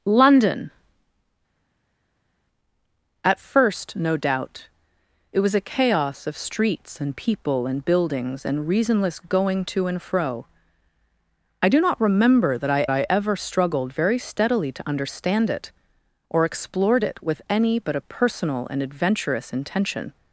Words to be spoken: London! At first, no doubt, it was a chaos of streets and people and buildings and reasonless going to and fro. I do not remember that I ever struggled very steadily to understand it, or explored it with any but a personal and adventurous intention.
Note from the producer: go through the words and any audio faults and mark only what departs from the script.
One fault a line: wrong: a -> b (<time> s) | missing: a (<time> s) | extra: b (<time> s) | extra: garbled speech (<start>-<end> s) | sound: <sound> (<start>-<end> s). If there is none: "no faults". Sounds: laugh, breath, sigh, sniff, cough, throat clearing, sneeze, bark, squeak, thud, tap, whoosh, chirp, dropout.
extra: I (12.9 s)